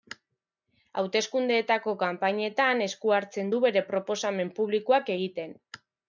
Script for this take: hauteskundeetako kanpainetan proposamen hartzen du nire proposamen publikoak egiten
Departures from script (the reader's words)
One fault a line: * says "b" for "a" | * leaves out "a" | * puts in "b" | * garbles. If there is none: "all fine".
* says "esku" for "proposamen"
* says "bere" for "nire"